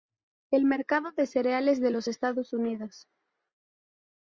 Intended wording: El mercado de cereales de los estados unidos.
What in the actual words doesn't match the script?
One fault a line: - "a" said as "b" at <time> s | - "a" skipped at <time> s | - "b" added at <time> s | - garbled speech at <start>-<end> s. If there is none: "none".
none